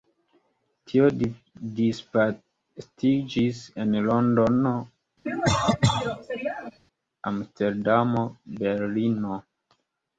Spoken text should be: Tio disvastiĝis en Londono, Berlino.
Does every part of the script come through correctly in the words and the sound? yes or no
no